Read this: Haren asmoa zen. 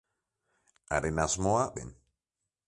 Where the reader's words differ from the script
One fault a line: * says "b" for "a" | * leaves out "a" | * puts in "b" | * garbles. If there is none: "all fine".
all fine